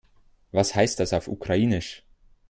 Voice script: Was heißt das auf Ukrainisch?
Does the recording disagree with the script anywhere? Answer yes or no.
no